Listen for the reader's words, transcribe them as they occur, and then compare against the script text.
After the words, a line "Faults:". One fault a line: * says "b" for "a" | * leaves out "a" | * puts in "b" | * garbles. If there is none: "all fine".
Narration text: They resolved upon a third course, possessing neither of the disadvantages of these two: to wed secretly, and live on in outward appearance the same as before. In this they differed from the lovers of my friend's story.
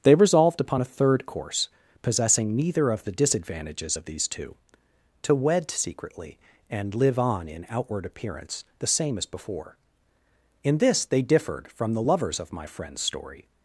They resolved upon a third course, possessing neither of the disadvantages of these two: to wed secretly, and live on in outward appearance the same as before. In this they differed from the lovers of my friend's story.
Faults:
all fine